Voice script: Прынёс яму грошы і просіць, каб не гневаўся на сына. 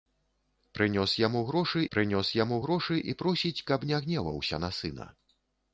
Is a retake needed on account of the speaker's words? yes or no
yes